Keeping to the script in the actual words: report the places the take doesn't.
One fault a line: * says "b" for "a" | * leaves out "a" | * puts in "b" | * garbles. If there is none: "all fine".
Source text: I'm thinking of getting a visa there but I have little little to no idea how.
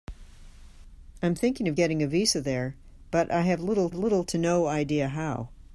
all fine